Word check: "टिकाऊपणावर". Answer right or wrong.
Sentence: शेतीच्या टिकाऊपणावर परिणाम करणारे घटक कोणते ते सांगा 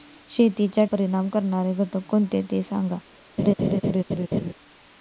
wrong